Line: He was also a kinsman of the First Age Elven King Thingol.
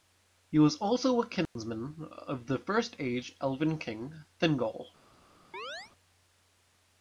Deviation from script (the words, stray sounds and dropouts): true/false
true